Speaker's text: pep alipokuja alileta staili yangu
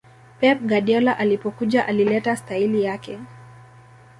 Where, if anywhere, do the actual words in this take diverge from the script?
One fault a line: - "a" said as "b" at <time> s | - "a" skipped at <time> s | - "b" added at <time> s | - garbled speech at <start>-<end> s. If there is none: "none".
- "guardiola" added at 0.6 s
- "yangu" said as "yake" at 2.8 s